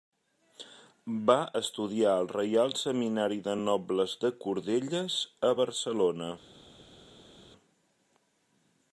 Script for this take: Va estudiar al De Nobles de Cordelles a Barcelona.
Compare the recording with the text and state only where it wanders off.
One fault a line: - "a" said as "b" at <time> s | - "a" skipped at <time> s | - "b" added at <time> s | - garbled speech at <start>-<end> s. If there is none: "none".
- "Reial Seminari" added at 2.3 s